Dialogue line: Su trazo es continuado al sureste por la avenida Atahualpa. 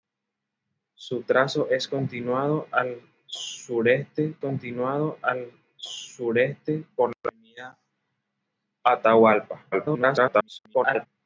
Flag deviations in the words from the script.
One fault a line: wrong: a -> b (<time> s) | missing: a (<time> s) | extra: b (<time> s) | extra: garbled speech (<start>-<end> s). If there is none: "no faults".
extra: continuado al sureste (4.4 s)
extra: garbled speech (9.7-11.1 s)